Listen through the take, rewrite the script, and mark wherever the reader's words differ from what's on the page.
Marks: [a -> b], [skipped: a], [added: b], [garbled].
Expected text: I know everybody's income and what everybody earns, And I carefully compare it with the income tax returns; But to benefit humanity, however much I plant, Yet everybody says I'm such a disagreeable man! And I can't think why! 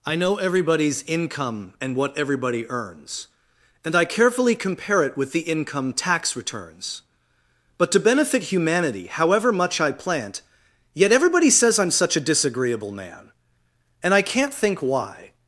I know everybody's income and what everybody earns, And I carefully compare it with the income tax returns; But to benefit humanity, however much I plant, Yet everybody says I'm such a disagreeable man! And I can't think why!